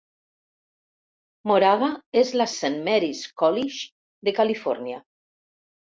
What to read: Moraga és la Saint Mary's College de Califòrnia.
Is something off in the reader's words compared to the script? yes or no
no